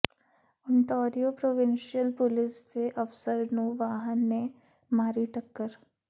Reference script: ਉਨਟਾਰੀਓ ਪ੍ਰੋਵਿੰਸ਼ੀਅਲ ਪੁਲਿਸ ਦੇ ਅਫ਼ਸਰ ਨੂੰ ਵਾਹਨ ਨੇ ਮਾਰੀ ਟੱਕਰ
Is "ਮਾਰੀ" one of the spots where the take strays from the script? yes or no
no